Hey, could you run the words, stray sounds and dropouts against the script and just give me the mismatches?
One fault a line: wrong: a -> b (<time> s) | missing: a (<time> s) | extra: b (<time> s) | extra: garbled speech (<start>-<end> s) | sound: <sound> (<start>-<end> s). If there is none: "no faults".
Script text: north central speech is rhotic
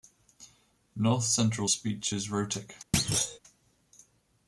sound: thud (2.9-3.4 s)